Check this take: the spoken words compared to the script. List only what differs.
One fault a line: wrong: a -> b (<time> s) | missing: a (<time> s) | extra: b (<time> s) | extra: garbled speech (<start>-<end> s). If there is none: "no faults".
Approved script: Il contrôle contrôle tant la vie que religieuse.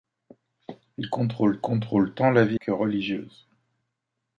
no faults